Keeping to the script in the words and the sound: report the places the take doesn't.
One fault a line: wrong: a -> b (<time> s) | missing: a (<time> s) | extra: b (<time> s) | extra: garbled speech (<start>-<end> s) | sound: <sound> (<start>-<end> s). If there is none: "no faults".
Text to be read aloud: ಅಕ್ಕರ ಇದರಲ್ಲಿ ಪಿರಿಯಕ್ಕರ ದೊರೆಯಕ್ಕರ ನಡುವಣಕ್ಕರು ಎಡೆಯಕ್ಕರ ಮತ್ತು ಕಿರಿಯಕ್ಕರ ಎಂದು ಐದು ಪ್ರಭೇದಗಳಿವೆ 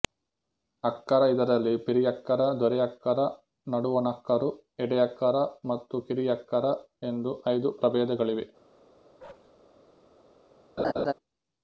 sound: bark (9.2-9.5 s)
sound: laugh (10.8-11.1 s)